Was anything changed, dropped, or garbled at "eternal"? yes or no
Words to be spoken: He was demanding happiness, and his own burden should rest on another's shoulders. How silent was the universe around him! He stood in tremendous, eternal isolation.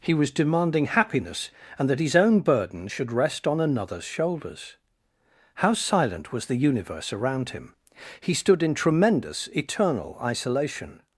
no